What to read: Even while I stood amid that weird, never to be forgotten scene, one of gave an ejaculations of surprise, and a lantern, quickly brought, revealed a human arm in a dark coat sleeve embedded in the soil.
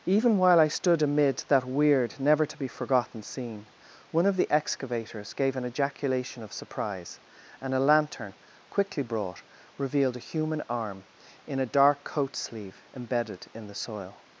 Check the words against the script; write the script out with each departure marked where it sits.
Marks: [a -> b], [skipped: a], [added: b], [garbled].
Even while I stood amid that weird, never to be forgotten scene, one of [added: the excavators] gave an [ejaculations -> ejaculation] of surprise, and a lantern, quickly brought, revealed a human arm in a dark coat sleeve embedded in the soil.